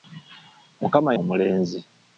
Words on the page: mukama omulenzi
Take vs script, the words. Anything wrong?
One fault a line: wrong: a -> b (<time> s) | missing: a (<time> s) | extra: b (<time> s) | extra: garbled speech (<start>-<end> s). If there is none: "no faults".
no faults